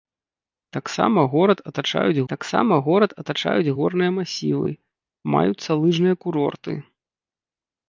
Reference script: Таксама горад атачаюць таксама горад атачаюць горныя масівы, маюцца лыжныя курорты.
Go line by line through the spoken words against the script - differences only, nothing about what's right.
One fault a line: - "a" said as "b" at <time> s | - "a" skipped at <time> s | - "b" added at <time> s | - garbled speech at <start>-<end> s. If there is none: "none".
none